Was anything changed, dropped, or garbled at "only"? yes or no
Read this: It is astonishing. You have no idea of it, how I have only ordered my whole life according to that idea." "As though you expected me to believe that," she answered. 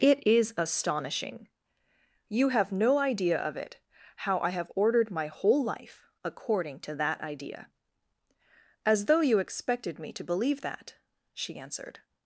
yes